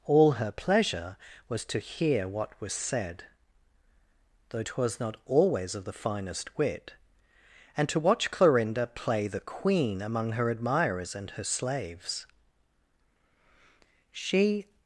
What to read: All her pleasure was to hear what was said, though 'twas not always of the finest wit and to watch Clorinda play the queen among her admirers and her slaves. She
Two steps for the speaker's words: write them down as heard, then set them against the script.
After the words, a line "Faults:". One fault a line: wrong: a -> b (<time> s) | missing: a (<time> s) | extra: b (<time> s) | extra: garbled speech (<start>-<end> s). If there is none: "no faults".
All her pleasure was to hear what was said, though 'twas not always of the finest wit and to watch Clorinda play the queen among her admirers and her slaves. She
Faults:
no faults